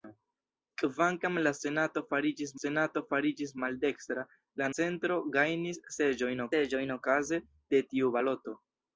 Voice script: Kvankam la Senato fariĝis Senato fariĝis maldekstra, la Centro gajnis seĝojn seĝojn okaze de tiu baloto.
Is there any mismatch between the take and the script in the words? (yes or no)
no